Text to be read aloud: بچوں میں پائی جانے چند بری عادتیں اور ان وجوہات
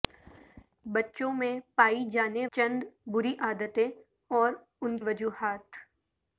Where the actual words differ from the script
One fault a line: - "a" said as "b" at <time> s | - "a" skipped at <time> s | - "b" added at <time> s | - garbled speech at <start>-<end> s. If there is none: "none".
none